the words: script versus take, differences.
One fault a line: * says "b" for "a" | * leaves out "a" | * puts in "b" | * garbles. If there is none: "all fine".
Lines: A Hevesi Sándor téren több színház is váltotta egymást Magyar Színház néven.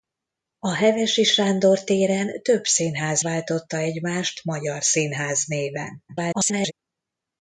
* leaves out "is"
* garbles